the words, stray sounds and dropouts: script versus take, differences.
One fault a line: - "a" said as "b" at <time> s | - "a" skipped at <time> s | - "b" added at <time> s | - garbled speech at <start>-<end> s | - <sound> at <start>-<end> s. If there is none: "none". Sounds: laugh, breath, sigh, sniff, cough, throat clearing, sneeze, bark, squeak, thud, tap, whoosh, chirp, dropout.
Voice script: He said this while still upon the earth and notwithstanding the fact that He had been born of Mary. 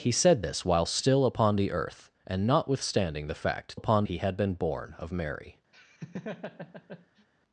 - "that" said as "upon" at 3.7 s
- laugh at 5.7-7.3 s